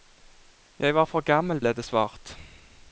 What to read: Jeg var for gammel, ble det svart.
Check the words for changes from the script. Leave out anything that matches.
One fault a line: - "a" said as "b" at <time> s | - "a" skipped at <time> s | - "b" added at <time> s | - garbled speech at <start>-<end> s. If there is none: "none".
none